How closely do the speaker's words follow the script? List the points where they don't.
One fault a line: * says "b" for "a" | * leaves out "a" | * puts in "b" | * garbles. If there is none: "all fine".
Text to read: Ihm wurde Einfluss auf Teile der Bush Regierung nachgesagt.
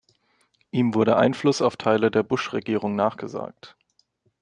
all fine